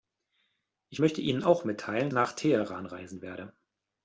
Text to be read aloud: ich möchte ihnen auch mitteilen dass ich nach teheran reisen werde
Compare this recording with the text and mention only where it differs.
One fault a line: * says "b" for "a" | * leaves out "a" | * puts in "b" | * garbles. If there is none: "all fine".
* leaves out "dass ich"